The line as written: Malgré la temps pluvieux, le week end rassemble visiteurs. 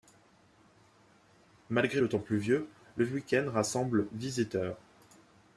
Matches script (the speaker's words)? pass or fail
fail